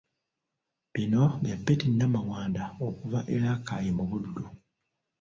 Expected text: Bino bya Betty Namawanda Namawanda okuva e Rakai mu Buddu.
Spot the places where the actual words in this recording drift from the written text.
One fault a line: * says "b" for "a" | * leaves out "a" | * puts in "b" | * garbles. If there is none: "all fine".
* leaves out "Namawanda"